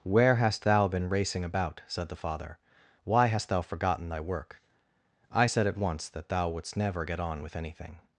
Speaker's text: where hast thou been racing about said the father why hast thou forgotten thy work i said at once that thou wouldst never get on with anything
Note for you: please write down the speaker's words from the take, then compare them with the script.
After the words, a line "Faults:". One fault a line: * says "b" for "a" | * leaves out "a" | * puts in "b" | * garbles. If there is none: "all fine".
where hast thou been racing about said the father why hast thou forgotten thy work i said at once that thou wouldst never get on with anything
Faults:
all fine